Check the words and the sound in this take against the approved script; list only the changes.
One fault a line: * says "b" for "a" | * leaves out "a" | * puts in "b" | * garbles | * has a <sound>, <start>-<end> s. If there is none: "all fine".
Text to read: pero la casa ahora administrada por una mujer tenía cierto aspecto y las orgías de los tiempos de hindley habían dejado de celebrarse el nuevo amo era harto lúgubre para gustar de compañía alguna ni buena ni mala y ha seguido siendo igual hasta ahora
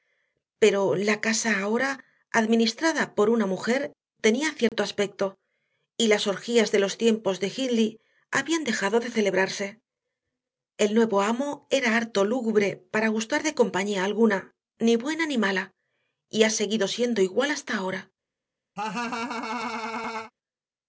* has a dropout, 4.7-4.7 s
* has a laugh, 18.8-20.3 s